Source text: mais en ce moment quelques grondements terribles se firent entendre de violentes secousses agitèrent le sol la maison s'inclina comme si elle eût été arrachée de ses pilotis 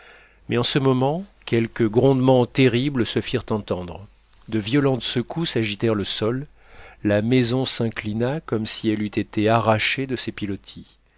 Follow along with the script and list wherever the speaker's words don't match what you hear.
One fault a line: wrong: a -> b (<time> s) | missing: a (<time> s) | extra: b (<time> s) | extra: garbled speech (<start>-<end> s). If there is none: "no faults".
no faults